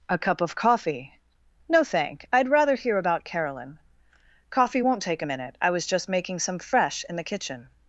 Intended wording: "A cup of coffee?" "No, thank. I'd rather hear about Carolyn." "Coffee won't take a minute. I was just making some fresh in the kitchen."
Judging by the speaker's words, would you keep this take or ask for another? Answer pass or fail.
pass